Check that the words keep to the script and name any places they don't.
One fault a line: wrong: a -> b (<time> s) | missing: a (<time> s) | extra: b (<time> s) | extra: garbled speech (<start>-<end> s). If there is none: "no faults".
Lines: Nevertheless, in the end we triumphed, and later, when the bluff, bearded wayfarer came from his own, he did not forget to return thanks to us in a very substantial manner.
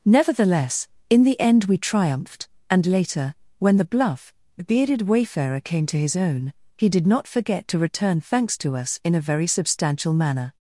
wrong: from -> to (5.8 s)